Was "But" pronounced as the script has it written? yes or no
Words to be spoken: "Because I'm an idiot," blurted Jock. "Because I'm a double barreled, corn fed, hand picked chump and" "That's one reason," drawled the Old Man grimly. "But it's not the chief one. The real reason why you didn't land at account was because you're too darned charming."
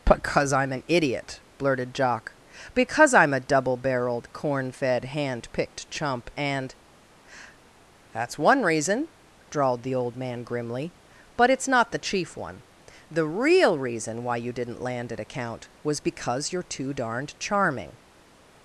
yes